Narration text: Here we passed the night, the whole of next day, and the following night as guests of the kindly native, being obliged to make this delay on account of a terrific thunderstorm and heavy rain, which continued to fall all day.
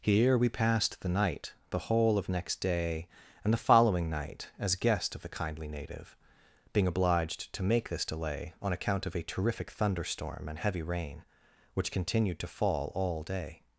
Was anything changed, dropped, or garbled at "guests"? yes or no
yes